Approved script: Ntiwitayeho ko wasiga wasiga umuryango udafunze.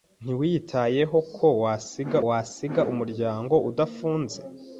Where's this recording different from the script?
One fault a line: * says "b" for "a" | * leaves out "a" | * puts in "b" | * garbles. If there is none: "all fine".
all fine